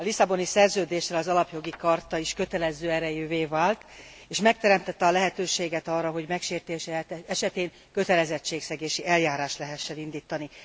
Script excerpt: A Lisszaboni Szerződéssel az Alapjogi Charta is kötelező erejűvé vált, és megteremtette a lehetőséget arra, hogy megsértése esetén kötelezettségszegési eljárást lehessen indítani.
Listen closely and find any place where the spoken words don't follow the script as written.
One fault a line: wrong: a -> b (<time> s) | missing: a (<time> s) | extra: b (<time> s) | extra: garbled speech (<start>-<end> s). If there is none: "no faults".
no faults